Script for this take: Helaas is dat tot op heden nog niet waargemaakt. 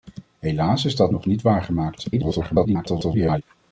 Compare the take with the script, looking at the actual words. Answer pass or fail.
fail